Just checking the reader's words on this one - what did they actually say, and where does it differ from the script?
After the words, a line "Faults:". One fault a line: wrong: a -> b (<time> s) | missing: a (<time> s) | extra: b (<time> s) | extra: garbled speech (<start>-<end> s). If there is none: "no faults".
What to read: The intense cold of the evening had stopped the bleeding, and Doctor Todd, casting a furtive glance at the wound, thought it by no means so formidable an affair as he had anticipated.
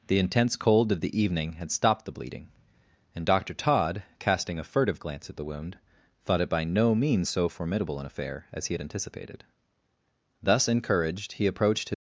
The intense cold of the evening had stopped the bleeding, and Doctor Todd, casting a furtive glance at the wound, thought it by no means so formidable an affair as he had anticipated. Thus encouraged, he approached his
Faults:
extra: Thus encouraged he approached his (10.4 s)